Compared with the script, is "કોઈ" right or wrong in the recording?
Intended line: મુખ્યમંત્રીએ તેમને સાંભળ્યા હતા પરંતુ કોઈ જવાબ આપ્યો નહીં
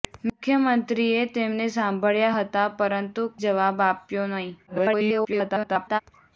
wrong